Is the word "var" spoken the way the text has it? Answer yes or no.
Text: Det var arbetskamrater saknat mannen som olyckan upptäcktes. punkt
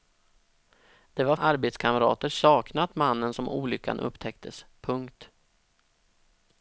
yes